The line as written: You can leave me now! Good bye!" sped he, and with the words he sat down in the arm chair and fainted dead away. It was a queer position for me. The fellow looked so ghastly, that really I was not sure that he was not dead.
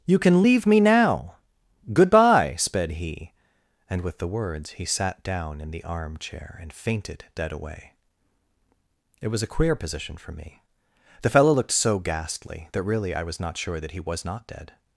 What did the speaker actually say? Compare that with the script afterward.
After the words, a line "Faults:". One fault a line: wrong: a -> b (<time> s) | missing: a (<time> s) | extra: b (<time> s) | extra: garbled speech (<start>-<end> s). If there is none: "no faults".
You can leave me now! Good bye!" sped he, and with the words he sat down in the arm chair and fainted dead away. It was a queer position for me. The fellow looked so ghastly, that really I was not sure that he was not dead.
Faults:
no faults